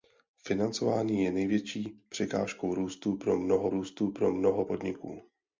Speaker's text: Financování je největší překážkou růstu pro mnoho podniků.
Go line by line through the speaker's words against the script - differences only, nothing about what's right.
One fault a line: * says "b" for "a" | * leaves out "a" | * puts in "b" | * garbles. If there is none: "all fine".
* puts in "růstu pro mnoho"